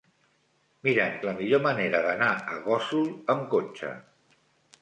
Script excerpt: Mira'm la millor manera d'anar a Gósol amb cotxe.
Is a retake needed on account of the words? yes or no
no